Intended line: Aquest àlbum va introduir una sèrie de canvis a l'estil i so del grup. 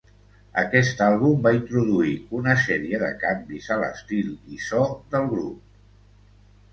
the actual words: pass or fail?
pass